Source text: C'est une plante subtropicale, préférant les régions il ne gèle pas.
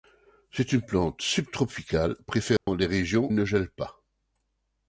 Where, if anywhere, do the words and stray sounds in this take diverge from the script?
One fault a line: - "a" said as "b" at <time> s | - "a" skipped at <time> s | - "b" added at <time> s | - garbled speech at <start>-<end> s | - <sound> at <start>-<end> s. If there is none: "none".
- dropout at 2.6-2.7 s